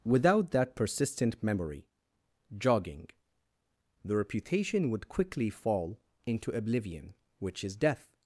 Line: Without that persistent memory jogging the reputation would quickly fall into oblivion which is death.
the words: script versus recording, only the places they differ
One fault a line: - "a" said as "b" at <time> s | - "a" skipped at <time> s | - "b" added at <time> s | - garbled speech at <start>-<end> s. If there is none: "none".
none